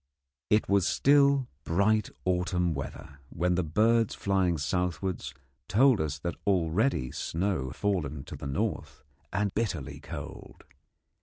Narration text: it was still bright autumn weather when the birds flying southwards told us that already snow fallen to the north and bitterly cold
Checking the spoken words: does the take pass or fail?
pass